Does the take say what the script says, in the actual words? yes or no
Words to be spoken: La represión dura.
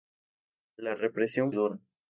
yes